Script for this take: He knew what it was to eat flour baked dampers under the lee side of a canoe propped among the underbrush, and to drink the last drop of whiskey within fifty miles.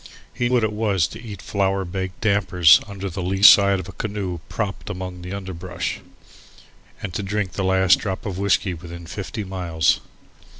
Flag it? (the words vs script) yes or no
yes